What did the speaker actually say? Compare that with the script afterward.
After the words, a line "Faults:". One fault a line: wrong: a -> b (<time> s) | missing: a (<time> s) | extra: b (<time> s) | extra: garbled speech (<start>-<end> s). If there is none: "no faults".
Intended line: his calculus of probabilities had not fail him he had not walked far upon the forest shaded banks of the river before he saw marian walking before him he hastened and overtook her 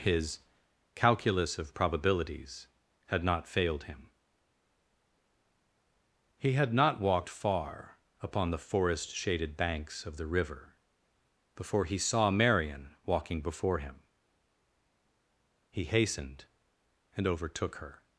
his calculus of probabilities had not failed him he had not walked far upon the forest shaded banks of the river before he saw marian walking before him he hastened and overtook her
Faults:
wrong: fail -> failed (3.5 s)